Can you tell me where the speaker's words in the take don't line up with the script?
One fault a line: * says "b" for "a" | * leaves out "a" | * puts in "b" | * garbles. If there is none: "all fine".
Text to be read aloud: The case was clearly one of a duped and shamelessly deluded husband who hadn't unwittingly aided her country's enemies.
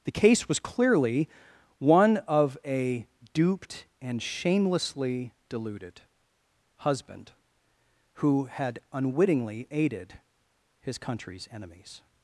* says "had" for "hadn't"
* says "his" for "her"